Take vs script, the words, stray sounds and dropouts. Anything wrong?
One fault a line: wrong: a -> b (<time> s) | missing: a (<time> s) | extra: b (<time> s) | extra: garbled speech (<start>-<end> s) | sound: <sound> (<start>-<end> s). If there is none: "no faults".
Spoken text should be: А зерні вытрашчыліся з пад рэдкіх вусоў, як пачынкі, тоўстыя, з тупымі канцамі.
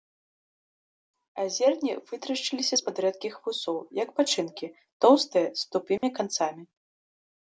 sound: dropout (6.0-6.0 s)